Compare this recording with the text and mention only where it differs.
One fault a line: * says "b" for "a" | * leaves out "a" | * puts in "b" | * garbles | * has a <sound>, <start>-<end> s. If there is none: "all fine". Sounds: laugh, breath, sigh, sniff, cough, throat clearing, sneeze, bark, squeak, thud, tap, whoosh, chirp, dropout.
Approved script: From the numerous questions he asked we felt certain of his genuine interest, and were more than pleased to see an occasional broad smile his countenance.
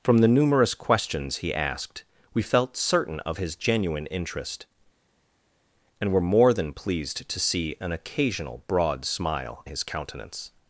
all fine